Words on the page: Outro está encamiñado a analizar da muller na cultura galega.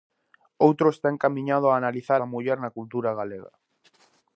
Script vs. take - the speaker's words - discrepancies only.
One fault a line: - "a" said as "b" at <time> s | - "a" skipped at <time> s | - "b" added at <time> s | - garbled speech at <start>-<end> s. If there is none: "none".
none